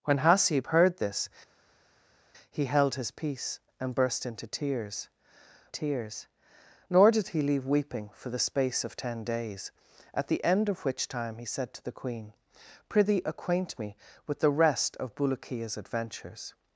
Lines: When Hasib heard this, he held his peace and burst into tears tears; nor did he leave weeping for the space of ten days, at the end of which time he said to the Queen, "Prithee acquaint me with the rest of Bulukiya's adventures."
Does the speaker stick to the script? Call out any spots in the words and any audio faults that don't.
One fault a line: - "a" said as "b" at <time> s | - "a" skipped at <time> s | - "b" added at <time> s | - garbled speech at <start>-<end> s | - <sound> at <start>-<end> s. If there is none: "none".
none